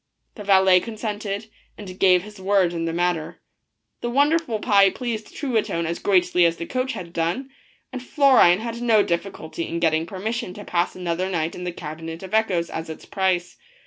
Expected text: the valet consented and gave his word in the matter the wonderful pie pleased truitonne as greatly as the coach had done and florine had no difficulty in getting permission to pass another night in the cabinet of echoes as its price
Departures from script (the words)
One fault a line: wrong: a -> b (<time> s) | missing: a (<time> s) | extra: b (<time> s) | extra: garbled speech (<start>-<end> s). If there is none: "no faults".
no faults